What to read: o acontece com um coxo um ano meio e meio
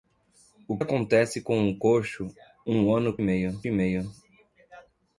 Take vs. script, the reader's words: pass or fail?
pass